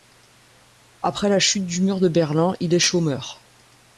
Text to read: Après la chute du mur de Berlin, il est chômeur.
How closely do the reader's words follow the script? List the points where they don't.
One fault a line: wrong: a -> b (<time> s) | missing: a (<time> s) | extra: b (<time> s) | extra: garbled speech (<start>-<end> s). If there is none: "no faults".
no faults